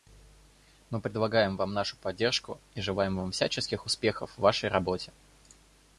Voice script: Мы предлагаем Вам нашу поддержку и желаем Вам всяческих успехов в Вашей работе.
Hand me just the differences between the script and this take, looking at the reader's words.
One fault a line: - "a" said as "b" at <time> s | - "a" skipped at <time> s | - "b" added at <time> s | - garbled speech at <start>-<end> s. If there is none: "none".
none